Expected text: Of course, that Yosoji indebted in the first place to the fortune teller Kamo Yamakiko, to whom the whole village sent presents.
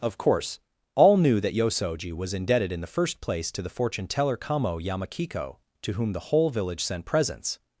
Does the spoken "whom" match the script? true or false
true